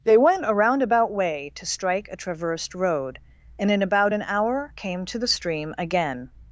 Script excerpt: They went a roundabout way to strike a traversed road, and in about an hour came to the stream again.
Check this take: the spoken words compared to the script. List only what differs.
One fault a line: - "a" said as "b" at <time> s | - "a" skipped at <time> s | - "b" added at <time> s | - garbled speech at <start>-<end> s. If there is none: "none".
none